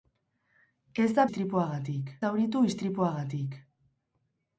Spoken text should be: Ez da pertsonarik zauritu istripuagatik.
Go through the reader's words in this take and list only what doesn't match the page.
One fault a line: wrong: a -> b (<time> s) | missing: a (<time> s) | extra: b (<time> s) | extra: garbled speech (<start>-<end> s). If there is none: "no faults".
wrong: pertsonarik -> istripuagatik (1.3 s)